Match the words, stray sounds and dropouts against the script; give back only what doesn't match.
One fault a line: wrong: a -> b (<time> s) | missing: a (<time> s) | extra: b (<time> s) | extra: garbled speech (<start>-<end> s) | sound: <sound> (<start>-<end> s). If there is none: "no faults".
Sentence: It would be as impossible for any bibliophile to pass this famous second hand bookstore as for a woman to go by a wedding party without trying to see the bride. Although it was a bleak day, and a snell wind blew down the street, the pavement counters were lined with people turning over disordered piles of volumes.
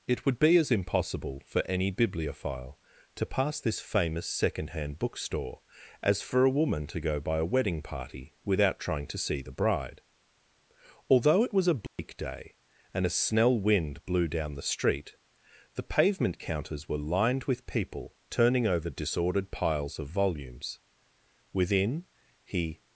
sound: dropout (11.9-12.0 s)
extra: Within he (21.5 s)